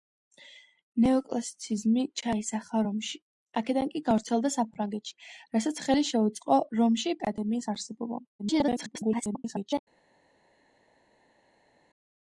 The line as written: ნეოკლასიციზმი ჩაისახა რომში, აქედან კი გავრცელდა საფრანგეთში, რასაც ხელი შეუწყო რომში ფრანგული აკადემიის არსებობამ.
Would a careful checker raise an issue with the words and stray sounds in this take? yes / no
yes